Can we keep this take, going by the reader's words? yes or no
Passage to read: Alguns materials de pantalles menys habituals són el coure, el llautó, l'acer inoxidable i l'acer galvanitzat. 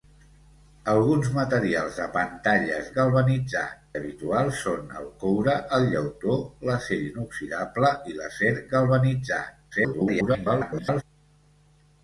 no